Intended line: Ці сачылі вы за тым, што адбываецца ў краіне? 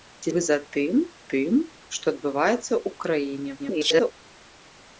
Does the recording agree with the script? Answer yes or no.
no